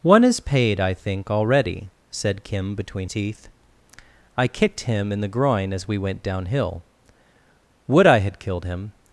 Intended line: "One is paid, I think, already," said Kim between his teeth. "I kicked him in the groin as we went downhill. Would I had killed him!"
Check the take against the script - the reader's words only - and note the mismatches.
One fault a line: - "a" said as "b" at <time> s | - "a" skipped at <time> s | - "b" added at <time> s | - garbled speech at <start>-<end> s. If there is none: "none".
- "his" skipped at 3.1 s